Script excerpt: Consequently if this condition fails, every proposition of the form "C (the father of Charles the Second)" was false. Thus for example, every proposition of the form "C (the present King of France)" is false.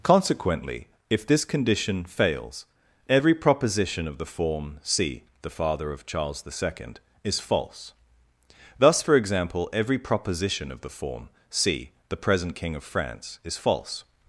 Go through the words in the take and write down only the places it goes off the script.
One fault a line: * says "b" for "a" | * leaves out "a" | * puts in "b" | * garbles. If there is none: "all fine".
* says "is" for "was"